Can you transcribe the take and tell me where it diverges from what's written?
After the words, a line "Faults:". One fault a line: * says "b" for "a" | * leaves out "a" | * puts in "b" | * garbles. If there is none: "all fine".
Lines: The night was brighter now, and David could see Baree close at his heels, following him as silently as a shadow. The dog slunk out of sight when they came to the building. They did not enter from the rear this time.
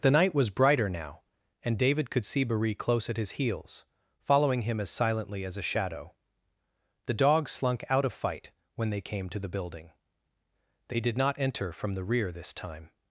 The night was brighter now, and David could see Baree close at his heels, following him as silently as a shadow. The dog slunk out of fight when they came to the building. They did not enter from the rear this time.
Faults:
* says "fight" for "sight"